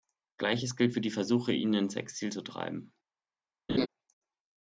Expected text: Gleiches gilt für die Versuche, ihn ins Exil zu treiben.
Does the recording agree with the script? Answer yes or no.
yes